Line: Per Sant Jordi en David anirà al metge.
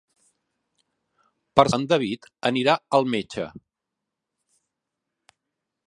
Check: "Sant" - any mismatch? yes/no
yes